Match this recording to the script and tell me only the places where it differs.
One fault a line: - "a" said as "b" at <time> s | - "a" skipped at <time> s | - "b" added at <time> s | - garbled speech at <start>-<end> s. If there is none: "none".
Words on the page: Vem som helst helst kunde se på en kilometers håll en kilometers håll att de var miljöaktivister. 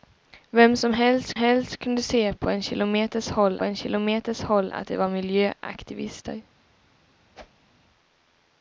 none